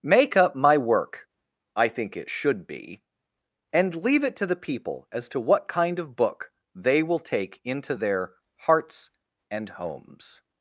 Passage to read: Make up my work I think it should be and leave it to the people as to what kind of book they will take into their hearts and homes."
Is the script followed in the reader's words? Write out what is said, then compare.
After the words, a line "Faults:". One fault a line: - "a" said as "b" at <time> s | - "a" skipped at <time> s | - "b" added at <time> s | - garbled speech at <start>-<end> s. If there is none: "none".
Make up my work I think it should be and leave it to the people as to what kind of book they will take into their hearts and homes."
Faults:
none